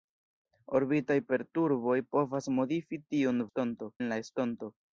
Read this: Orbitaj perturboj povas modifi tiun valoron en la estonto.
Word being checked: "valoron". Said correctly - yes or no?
no